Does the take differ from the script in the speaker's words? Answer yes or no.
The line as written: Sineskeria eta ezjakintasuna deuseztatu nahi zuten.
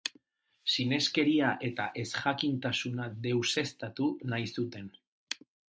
no